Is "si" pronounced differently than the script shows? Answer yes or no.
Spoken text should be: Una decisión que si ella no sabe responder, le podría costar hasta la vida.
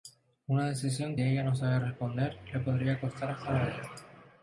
yes